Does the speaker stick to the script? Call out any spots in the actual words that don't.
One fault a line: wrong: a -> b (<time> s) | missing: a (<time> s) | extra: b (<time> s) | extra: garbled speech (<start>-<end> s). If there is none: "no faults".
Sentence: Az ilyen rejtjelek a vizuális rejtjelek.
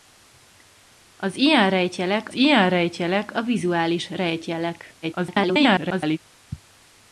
extra: ilyen rejtjelek (2.3 s)
extra: garbled speech (5.0-6.2 s)